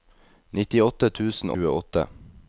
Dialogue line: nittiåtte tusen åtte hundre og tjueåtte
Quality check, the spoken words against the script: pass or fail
fail